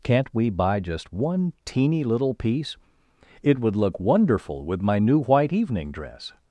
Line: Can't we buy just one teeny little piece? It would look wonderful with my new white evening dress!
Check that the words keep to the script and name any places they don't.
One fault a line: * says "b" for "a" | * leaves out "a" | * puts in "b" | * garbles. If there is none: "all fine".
all fine